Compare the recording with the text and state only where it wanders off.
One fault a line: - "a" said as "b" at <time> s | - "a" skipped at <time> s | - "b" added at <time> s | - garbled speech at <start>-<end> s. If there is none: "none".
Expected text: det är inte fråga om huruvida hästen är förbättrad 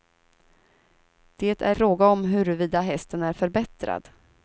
- "inte" skipped at 1.8 s